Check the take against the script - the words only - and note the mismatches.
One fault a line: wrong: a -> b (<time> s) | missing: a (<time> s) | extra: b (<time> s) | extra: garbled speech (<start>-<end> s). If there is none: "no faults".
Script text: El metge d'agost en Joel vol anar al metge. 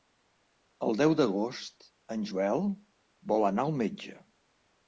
wrong: metge -> deu (1.0 s)